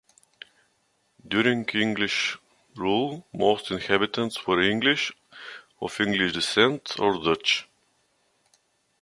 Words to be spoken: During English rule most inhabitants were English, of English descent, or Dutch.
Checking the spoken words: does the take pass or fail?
pass